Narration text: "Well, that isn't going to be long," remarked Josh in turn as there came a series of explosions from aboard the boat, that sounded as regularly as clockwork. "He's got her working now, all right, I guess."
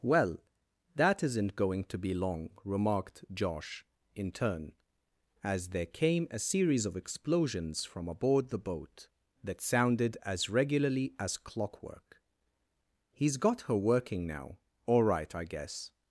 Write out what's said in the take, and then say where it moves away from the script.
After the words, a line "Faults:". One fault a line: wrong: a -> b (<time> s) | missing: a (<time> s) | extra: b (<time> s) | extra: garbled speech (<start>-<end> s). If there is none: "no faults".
"Well, that isn't going to be long," remarked Josh in turn as there came a series of explosions from aboard the boat, that sounded as regularly as clockwork. "He's got her working now, all right, I guess."
Faults:
no faults